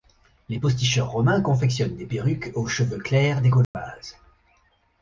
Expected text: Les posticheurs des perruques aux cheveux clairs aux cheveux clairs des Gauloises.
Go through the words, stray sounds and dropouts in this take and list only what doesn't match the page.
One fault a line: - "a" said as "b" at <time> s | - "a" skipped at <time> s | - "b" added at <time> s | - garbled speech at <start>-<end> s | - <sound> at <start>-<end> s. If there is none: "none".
- "romains confectionnent" added at 1.1 s
- "aux cheveux clairs" skipped at 3.4 s
- dropout at 3.6-3.7 s